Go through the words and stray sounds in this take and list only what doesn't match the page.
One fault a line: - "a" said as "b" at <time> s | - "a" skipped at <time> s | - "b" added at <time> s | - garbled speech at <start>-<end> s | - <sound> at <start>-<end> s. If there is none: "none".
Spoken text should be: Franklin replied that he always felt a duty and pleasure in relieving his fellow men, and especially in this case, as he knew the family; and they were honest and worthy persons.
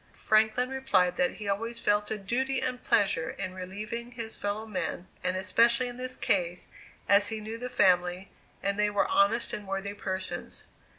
none